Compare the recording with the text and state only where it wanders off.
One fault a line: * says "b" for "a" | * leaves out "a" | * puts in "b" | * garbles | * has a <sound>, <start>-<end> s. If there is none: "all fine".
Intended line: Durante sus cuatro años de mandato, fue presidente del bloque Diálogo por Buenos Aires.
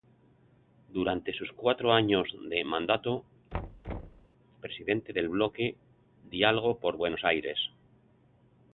* leaves out "fue"
* has a thud, 3.5-4.3 s